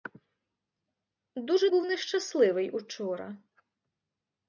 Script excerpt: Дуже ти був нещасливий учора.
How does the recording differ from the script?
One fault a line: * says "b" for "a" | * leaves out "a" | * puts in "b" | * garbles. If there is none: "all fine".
* leaves out "ти"